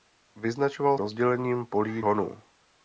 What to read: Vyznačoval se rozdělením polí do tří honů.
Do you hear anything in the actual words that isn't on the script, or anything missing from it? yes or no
yes